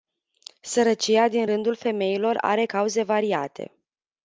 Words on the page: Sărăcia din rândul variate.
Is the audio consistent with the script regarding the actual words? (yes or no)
no